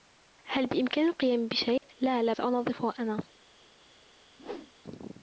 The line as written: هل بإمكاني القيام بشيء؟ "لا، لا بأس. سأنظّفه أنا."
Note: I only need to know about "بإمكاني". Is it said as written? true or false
true